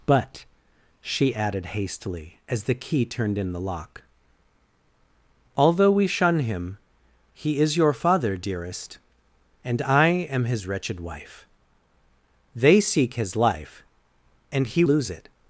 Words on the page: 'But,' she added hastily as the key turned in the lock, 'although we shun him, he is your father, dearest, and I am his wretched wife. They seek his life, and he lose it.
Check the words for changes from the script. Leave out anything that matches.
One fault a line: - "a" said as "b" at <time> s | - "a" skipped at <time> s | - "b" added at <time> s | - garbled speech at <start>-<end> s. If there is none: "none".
none